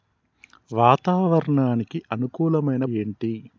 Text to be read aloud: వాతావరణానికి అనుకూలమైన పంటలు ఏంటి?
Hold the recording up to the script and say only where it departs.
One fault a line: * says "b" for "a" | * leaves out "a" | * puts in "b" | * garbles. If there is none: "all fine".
* leaves out "పంటలు"